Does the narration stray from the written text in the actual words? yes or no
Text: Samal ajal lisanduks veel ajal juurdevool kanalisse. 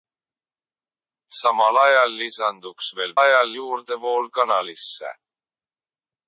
no